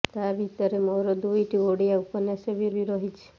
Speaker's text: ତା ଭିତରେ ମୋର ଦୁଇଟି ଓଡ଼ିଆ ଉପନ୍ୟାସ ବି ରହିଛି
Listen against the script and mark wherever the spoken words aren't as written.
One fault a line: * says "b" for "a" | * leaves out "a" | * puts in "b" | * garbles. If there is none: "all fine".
* puts in "ବି"